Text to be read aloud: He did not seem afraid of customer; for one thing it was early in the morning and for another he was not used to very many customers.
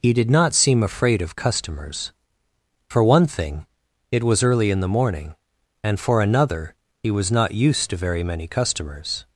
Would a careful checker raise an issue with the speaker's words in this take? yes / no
yes